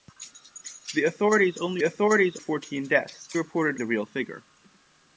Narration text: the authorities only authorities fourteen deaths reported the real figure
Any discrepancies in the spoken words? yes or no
no